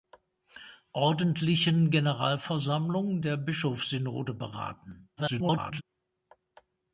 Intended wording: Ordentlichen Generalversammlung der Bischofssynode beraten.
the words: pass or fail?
fail